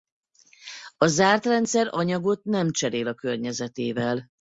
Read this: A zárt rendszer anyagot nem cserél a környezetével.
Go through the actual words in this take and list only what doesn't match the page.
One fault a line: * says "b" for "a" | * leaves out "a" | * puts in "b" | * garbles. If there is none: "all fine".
all fine